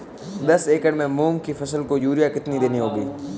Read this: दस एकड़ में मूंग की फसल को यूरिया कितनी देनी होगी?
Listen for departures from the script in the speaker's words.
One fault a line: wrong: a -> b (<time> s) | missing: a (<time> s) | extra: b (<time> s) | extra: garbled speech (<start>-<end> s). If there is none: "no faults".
no faults